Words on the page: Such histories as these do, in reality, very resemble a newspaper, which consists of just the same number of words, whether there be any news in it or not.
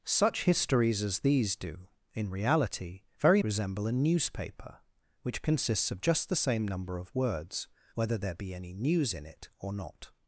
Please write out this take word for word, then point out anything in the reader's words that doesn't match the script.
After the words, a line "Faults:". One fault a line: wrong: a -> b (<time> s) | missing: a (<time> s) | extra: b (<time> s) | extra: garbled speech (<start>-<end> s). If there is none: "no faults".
Such histories as these do, in reality, very resemble a newspaper, which consists of just the same number of words, whether there be any news in it or not.
Faults:
no faults